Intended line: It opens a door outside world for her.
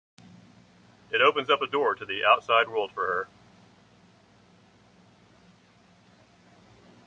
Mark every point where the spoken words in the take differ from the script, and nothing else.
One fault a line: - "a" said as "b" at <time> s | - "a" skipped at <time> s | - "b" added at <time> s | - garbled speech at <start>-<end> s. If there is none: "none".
- "up" added at 1.5 s
- "to the" added at 1.9 s